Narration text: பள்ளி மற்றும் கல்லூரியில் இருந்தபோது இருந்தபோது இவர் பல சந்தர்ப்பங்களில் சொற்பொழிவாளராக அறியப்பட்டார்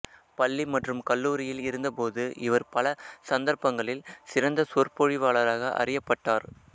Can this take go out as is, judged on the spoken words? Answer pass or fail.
fail